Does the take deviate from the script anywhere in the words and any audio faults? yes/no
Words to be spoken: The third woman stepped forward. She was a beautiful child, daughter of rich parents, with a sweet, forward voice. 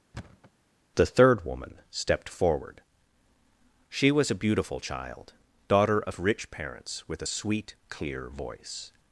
yes